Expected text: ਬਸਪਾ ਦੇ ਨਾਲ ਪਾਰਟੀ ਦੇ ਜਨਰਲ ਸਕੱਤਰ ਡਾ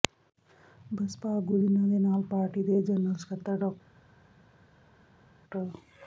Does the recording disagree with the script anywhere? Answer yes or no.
yes